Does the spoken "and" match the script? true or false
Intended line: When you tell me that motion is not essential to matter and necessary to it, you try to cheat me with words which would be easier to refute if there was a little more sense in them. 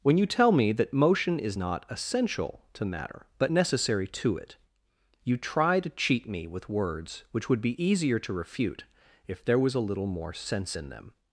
false